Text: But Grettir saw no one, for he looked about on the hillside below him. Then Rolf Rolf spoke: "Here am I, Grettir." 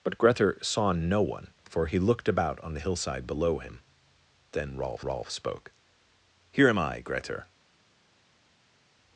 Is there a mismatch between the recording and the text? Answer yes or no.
no